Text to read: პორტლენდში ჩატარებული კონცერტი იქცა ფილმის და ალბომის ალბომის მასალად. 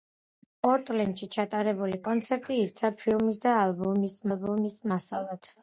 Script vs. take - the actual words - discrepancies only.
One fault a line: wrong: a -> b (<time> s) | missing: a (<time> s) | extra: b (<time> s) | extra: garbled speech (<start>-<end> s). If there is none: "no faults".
no faults